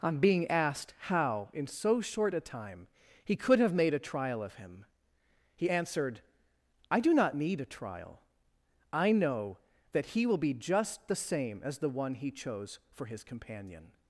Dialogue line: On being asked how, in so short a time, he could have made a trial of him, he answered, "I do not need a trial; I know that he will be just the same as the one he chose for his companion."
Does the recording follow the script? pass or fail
pass